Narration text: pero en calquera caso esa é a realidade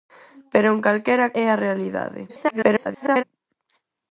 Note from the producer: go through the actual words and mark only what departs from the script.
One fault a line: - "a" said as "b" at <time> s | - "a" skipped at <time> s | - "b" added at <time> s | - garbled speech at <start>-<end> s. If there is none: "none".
- "caso esa" skipped at 1.3 s
- garbled speech at 2.3-3.2 s